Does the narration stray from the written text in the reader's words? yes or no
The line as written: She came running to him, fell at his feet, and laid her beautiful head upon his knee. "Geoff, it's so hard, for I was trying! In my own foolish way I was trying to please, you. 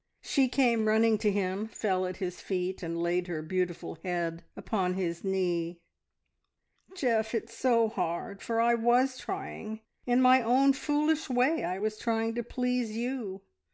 no